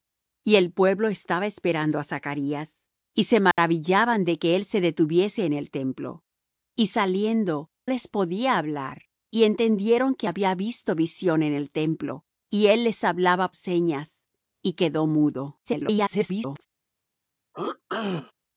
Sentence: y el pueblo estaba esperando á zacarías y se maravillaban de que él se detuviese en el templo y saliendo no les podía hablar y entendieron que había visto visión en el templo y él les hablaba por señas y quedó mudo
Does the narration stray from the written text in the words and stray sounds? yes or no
yes